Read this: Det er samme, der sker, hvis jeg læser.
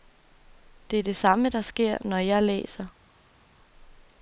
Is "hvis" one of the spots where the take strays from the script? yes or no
yes